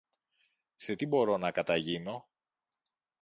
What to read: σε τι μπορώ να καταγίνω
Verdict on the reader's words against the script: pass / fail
pass